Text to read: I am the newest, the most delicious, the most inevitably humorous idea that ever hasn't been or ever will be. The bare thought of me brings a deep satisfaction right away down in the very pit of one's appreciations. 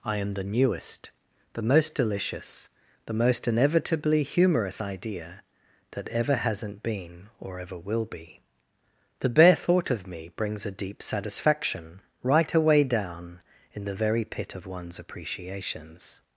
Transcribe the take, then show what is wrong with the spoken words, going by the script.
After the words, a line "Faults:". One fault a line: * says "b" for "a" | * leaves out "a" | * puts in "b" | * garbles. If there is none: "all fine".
I am the newest, the most delicious, the most inevitably humorous idea that ever hasn't been or ever will be. The bare thought of me brings a deep satisfaction right away down in the very pit of one's appreciations.
Faults:
all fine